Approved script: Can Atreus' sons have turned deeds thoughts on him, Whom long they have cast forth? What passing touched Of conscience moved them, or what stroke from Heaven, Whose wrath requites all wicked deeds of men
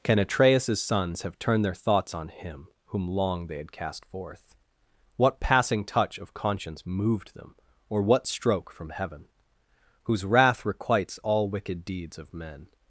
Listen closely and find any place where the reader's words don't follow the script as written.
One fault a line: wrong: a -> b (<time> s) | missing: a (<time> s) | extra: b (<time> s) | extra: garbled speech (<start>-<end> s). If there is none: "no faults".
wrong: deeds -> their (1.6 s)
wrong: have -> had (3.6 s)
wrong: touched -> touch (5.8 s)